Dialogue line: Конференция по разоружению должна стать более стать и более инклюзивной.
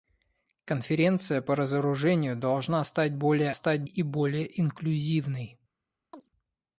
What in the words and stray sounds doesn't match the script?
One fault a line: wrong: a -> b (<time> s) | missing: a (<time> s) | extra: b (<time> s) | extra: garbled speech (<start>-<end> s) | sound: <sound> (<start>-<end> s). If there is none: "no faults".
sound: chirp (6.1-6.3 s)